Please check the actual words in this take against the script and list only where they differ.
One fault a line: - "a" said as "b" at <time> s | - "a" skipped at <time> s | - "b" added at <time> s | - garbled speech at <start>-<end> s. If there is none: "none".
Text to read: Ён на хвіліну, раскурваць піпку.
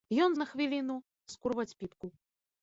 none